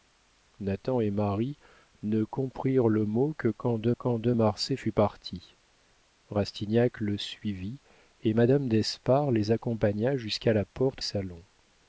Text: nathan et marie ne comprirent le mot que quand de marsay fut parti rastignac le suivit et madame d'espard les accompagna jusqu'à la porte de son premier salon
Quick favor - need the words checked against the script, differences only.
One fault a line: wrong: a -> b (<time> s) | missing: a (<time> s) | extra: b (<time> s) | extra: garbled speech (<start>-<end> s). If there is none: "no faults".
extra: quand de (3.9 s)
missing: de son premier (11.0 s)